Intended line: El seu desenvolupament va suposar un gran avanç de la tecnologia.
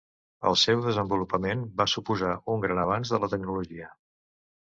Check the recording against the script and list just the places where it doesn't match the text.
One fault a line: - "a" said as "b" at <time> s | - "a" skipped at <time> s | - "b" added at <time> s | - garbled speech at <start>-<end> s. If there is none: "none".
none